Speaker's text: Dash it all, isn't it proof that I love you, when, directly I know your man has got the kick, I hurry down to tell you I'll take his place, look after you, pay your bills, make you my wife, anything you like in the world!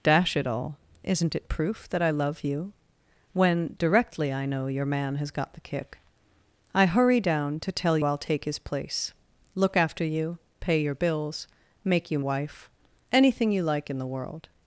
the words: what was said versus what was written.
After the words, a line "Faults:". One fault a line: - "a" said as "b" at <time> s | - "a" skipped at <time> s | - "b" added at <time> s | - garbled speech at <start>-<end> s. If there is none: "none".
Dash it all, isn't it proof that I love you, when, directly I know your man has got the kick, I hurry down to tell I'll take his place, look after you, pay your bills, make you wife, anything you like in the world!
Faults:
- "you" skipped at 8.0 s
- "my" skipped at 12.2 s